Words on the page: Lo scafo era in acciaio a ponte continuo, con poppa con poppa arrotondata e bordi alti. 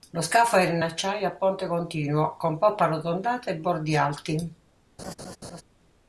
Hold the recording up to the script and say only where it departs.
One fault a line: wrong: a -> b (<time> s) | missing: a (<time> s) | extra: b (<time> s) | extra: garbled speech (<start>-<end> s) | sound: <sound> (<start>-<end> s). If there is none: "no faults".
missing: con poppa (2.8 s)
sound: laugh (5.0-5.6 s)